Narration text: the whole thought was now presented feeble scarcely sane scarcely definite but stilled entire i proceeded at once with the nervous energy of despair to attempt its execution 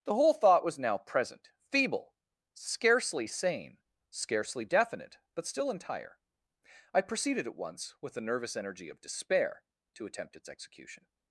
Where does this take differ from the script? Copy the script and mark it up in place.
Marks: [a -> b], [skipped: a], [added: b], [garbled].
the whole thought was now [presented -> present] feeble scarcely sane scarcely definite but [stilled -> still] entire i proceeded at once with the nervous energy of despair to attempt its execution